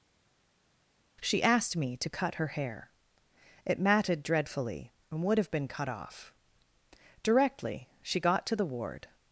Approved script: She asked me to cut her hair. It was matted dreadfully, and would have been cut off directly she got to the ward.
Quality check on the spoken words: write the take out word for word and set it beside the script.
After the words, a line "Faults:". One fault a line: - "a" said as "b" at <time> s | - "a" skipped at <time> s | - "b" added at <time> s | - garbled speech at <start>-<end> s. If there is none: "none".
She asked me to cut her hair. It matted dreadfully, and would have been cut off directly she got to the ward.
Faults:
- "was" skipped at 3.8 s